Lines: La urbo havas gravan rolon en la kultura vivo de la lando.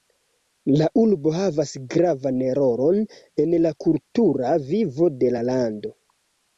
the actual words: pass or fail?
pass